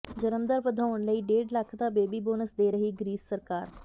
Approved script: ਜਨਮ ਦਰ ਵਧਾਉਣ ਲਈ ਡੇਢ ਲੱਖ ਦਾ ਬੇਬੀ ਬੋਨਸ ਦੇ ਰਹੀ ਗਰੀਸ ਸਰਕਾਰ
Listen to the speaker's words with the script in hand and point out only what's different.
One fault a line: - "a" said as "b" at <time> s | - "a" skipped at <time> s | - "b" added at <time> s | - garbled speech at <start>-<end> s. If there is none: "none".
none